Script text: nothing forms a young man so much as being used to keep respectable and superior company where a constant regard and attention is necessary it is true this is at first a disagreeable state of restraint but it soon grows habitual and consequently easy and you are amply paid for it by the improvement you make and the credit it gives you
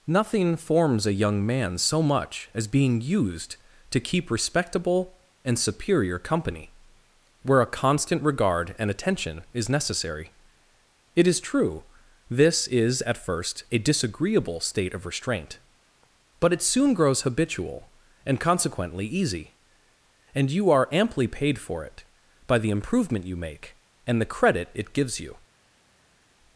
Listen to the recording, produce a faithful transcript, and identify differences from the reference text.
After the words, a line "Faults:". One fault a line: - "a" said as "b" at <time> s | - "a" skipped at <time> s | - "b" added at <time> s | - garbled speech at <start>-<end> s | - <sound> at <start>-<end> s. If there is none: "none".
nothing forms a young man so much as being used to keep respectable and superior company where a constant regard and attention is necessary it is true this is at first a disagreeable state of restraint but it soon grows habitual and consequently easy and you are amply paid for it by the improvement you make and the credit it gives you
Faults:
none